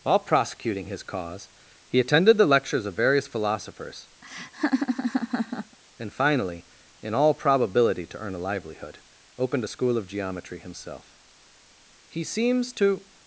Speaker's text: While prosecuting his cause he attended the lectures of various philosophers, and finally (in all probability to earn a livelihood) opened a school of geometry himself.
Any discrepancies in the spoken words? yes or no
yes